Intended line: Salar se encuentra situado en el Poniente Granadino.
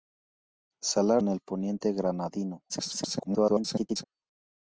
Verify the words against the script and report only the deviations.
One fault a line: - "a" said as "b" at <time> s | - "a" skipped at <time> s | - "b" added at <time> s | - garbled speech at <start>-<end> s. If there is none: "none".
- "se encuentra situado" skipped at 1.2 s
- garbled speech at 2.7-4.0 s